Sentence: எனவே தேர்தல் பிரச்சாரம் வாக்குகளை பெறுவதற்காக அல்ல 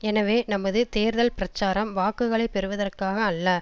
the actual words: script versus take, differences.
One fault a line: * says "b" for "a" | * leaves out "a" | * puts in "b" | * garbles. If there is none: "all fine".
* puts in "நமது"